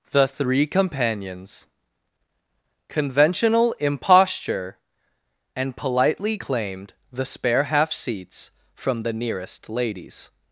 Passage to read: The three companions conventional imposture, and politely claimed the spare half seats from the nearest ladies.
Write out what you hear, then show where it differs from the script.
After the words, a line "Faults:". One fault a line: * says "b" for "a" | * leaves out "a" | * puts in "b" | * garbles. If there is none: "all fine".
The three companions conventional imposture, and politely claimed the spare half seats from the nearest ladies.
Faults:
all fine